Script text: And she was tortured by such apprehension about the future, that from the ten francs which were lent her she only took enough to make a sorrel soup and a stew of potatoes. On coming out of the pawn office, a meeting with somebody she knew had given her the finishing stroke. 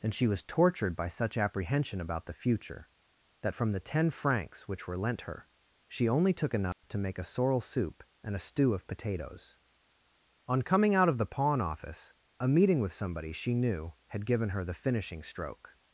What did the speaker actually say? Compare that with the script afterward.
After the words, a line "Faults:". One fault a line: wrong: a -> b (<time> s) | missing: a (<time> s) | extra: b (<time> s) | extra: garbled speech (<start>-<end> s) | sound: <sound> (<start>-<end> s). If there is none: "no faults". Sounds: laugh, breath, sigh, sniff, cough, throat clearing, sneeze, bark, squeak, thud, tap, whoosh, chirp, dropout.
And she was tortured by such apprehension about the future, that from the ten francs which were lent her she only took enough to make a sorrel soup and a stew of potatoes. On coming out of the pawn office, a meeting with somebody she knew had given her the finishing stroke.
Faults:
sound: dropout (6.7-6.8 s)